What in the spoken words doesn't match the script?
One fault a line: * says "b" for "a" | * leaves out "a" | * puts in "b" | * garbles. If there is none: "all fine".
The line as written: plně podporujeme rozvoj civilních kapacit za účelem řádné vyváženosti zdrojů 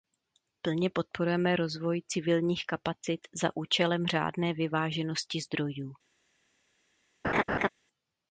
all fine